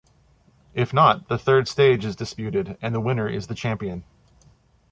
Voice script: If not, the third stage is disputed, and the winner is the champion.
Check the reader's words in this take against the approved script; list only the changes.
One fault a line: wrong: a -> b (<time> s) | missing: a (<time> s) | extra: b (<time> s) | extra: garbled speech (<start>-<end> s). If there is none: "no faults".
no faults